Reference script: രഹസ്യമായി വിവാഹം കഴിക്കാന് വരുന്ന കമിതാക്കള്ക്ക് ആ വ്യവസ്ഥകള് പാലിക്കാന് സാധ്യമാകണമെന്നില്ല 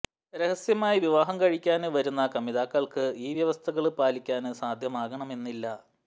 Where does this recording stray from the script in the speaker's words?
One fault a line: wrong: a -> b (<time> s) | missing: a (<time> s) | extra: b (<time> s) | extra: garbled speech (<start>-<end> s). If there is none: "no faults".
wrong: ആ -> ഈ (3.2 s)